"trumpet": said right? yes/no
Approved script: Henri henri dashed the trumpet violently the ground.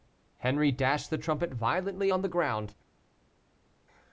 yes